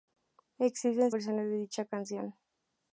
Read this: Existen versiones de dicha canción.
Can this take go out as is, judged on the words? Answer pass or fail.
pass